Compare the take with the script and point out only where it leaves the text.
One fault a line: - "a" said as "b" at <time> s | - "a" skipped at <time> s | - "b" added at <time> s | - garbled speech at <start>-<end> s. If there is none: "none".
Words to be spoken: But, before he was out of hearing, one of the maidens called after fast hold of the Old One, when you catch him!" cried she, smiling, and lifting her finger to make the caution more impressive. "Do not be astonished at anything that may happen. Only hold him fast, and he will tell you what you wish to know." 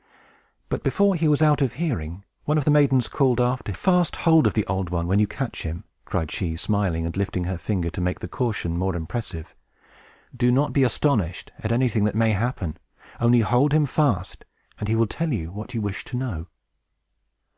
none